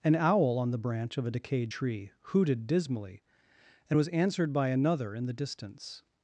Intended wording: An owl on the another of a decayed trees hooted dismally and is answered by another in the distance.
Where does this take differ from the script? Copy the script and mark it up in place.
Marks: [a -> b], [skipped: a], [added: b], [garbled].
An owl on the [another -> branch] of a decayed [trees -> tree] hooted dismally and [is -> was] answered by another in the distance.